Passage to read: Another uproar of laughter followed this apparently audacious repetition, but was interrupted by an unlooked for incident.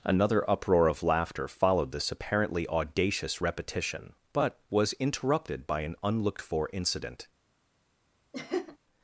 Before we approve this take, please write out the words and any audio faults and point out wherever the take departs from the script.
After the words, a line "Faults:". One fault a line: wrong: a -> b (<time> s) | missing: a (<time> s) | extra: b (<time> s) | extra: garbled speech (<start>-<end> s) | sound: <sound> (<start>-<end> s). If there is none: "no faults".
Another uproar of laughter followed this apparently audacious repetition, but was interrupted by an unlooked for incident.
Faults:
sound: laugh (8.3-8.8 s)